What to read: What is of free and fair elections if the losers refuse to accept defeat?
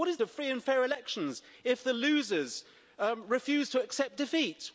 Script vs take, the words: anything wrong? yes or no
no